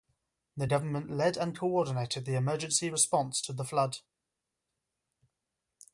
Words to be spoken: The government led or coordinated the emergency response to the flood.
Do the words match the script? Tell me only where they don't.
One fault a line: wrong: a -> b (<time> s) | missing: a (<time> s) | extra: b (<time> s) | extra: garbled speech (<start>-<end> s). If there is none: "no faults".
wrong: or -> and (1.4 s)